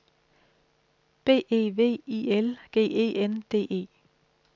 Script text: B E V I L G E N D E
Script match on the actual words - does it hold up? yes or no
yes